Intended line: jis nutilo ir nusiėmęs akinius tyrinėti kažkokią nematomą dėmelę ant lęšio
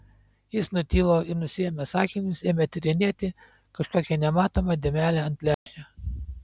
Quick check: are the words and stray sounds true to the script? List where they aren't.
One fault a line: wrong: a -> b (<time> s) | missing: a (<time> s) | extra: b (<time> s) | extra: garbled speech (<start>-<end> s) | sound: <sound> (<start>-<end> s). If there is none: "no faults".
extra: ėmė (2.5 s)
sound: dropout (5.5-5.7 s)